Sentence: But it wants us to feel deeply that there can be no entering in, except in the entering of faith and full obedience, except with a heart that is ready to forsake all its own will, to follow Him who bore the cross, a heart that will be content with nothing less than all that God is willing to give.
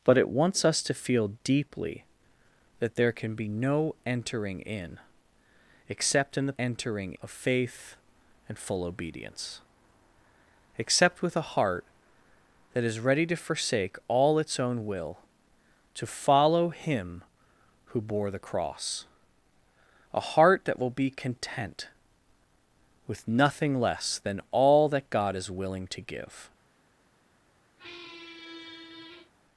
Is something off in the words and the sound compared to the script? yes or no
yes